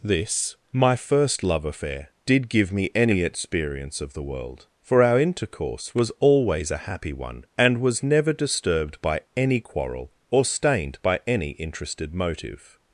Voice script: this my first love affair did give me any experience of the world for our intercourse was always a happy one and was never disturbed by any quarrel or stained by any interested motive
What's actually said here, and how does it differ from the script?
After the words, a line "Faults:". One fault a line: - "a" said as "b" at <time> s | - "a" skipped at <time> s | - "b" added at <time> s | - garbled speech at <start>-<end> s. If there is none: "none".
this my first love affair did give me any experience of the world for our intercourse was always a happy one and was never disturbed by any quarrel or stained by any interested motive
Faults:
none